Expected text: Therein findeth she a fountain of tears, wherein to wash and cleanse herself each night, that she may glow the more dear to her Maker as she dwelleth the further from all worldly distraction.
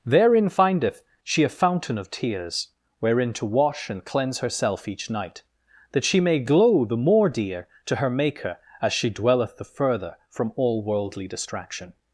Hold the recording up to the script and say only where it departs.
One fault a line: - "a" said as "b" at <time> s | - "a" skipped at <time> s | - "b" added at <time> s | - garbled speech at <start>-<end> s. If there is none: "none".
none